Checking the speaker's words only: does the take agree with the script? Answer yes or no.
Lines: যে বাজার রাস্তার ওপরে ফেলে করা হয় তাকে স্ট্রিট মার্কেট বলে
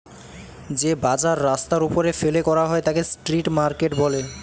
yes